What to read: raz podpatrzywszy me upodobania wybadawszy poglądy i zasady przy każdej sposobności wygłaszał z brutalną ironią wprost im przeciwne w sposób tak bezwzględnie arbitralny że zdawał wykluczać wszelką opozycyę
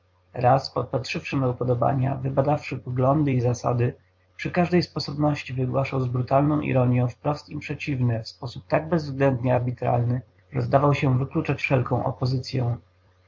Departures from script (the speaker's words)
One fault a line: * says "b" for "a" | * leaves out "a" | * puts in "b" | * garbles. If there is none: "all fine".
* puts in "się"